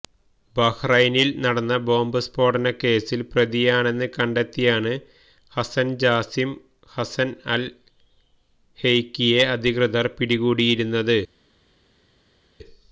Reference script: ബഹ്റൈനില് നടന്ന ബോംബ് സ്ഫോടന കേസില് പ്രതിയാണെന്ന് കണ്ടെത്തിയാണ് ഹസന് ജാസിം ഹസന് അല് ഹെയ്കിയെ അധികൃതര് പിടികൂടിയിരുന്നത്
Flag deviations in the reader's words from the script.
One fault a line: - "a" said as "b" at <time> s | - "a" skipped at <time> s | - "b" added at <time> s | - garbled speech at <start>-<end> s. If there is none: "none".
none